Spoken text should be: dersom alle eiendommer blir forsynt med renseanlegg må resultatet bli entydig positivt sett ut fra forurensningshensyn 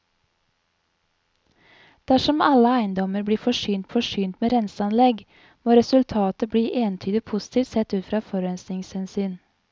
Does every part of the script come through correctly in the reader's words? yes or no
no